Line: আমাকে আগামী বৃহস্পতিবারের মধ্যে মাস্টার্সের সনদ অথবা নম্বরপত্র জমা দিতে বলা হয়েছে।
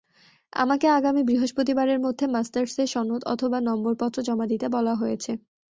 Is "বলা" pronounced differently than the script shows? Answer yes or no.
no